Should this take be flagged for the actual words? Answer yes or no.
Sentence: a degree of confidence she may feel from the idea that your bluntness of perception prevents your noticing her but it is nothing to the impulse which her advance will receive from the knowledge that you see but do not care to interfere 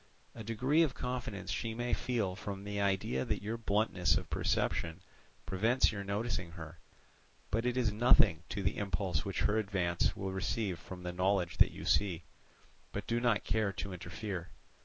no